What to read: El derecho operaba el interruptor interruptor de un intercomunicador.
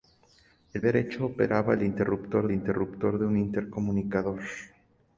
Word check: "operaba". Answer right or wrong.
right